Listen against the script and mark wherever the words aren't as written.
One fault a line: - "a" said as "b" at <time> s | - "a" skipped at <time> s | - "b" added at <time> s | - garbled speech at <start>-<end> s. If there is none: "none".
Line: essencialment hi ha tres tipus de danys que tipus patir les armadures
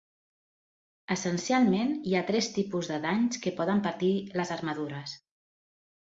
- "tipus" said as "poden" at 3.6 s